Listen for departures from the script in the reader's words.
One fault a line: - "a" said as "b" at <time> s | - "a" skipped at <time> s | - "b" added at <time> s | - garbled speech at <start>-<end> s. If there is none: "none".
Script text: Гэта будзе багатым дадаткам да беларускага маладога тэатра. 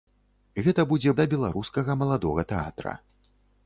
- "багатым дадаткам" skipped at 1.1 s